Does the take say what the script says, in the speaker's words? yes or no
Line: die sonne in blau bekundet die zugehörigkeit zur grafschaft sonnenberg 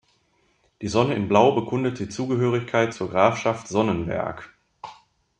yes